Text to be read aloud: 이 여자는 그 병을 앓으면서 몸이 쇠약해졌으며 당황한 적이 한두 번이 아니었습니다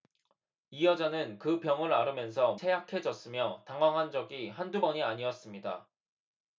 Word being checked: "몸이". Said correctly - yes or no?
no